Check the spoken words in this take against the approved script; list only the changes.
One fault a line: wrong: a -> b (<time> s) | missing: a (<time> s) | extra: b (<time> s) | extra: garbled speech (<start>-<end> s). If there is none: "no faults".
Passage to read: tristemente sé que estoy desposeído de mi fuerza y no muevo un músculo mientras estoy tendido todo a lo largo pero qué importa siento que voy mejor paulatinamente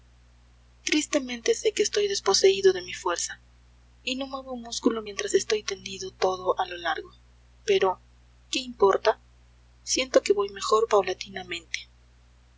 no faults